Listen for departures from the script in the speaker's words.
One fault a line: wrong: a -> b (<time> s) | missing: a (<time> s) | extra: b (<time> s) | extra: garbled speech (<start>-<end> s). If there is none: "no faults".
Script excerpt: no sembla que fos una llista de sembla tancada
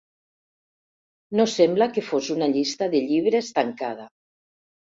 wrong: sembla -> llibres (3.1 s)